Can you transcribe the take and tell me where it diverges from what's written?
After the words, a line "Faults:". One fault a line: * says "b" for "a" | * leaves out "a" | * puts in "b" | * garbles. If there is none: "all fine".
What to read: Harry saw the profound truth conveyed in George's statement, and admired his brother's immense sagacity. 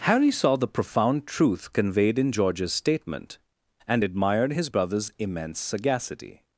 Harry saw the profound truth conveyed in George's statement, and admired his brother's immense sagacity.
Faults:
all fine